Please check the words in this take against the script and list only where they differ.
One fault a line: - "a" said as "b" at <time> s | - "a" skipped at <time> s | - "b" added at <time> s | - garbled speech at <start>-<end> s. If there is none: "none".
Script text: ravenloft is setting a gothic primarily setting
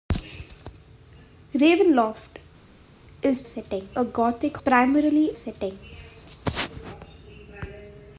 none